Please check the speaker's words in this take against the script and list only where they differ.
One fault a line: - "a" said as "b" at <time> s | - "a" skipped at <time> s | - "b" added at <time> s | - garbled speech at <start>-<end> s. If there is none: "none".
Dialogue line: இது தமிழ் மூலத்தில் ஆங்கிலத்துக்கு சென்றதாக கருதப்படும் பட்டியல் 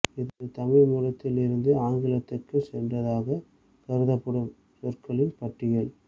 - "இருந்து" added at 1.4 s
- "சொற்களின்" added at 4.8 s